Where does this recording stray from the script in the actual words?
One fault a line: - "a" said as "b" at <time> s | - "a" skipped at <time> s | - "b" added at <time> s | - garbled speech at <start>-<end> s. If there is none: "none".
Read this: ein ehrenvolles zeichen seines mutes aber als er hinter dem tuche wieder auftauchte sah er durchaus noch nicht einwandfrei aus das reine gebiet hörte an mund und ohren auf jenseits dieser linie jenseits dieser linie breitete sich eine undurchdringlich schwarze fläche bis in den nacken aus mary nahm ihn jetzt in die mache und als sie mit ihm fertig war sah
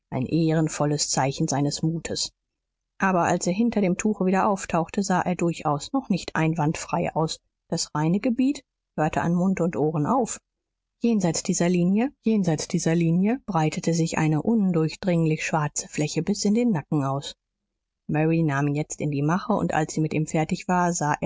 none